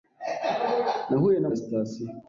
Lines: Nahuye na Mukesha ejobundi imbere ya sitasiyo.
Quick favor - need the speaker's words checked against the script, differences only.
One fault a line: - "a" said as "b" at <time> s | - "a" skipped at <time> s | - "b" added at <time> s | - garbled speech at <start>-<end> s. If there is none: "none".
- "Mukesha ejobundi imbere" skipped at 1.5 s